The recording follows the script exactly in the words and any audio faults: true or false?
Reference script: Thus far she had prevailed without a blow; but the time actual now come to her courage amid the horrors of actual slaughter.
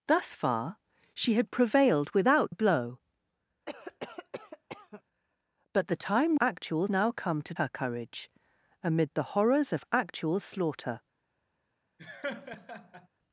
false